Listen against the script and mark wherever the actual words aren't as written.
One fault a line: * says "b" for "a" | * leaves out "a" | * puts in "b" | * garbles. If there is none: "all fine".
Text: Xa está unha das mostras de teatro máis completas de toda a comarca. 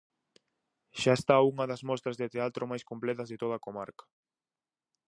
all fine